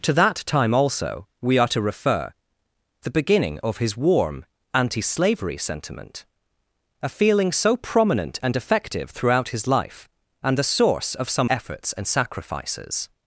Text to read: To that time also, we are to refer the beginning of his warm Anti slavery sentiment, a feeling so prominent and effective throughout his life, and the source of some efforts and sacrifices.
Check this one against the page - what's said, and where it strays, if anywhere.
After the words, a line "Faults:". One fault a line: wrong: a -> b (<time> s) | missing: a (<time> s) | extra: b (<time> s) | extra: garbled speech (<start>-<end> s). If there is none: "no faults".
To that time also, we are to refer the beginning of his warm Anti slavery sentiment, a feeling so prominent and effective throughout his life, and the source of some efforts and sacrifices.
Faults:
no faults